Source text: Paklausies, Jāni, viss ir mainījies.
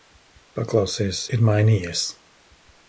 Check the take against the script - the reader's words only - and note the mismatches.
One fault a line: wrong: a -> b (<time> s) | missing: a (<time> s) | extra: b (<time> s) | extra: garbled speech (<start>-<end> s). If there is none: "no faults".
missing: Jāni viss (1.2 s)